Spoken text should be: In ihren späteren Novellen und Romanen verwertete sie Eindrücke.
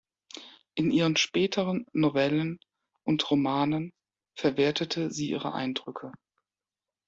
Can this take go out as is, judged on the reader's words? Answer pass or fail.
fail